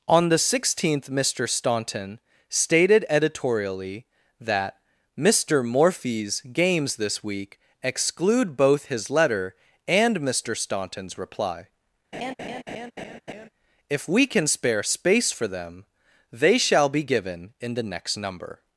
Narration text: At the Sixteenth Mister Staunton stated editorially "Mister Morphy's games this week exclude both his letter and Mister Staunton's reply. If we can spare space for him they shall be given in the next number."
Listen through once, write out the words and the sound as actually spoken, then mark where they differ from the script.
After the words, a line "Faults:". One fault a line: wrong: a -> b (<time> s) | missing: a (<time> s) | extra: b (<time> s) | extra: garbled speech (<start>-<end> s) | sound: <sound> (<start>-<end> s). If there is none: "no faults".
On the Sixteenth Mister Staunton stated editorially that "Mister Morphy's games this week exclude both his letter and Mister Staunton's reply. If we can spare space for them they shall be given in the next number."
Faults:
wrong: At -> On (0.1 s)
extra: that (4.4 s)
sound: laugh (12.1-13.5 s)
wrong: him -> them (15.5 s)